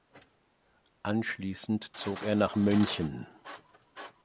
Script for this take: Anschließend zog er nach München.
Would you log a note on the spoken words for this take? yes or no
no